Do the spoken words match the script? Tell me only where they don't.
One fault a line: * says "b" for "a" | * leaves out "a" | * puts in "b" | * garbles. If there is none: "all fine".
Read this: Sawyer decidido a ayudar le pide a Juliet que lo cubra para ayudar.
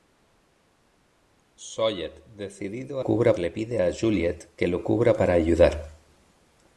* says "cubra" for "ayudar"